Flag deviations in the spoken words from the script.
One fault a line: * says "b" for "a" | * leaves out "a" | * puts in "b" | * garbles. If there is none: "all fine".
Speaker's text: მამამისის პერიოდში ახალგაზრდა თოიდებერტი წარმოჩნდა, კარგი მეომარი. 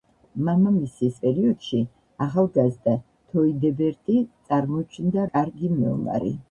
all fine